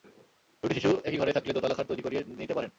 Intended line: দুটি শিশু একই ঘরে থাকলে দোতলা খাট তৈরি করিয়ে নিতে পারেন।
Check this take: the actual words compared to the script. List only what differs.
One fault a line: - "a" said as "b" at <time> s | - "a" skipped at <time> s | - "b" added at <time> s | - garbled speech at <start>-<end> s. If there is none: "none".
none